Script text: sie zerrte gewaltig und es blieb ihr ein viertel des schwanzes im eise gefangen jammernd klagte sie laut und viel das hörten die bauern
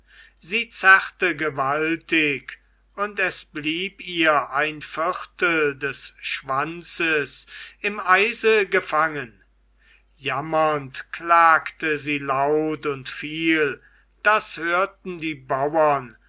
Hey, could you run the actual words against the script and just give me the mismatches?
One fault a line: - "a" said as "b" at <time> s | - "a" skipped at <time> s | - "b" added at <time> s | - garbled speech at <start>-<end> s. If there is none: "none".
none